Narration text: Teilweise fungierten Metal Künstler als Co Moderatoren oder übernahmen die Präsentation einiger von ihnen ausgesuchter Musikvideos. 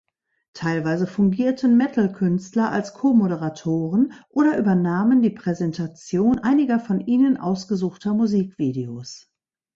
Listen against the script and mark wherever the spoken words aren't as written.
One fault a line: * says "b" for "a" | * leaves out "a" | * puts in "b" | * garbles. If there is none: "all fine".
all fine